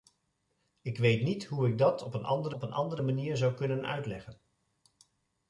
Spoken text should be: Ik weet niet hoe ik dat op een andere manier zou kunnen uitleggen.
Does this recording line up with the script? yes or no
no